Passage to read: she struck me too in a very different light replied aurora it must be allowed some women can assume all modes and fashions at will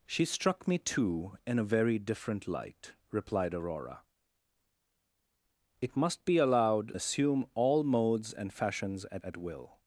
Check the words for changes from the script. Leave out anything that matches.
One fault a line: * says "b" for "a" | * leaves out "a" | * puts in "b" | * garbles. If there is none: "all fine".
* leaves out "some women can"
* puts in "at"